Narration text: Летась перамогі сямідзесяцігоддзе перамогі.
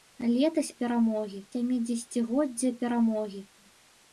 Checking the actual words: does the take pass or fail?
pass